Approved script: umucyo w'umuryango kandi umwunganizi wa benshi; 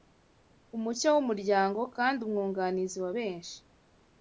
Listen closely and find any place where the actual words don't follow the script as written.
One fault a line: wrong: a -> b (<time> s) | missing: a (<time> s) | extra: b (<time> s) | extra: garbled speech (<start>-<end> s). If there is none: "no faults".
no faults